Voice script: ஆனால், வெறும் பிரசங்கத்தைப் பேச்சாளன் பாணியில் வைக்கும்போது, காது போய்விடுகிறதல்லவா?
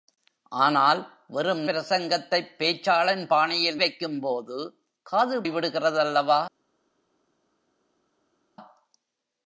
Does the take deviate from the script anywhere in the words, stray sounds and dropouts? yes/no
no